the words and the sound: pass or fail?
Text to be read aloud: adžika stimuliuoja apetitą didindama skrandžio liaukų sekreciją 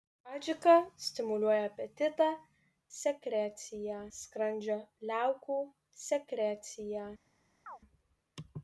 fail